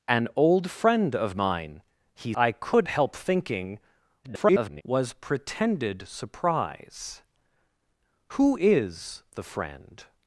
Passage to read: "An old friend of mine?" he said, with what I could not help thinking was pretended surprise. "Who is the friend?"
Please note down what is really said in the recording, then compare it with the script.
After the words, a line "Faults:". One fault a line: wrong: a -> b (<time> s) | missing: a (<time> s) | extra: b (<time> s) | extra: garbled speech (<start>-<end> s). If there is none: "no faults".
"An old friend of mine?" he I could help thinking [garbled] was pretended surprise. "Who is the friend?"
Faults:
missing: said with what (2.3 s)
missing: not (2.9 s)
extra: garbled speech (4.2-4.8 s)